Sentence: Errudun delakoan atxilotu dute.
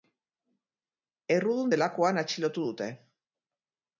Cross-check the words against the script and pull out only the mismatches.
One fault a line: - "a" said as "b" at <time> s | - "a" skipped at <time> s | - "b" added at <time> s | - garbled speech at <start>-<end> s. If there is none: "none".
none